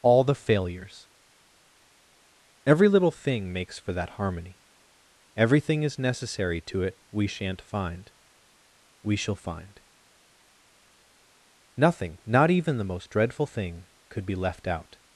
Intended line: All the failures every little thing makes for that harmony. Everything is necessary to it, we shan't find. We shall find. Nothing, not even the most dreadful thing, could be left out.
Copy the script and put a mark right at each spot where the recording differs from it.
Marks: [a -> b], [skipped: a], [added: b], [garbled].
All the failures every little thing makes for that harmony. Everything is necessary to it, we shan't find. We shall find. Nothing, not even the most dreadful thing, could be left out.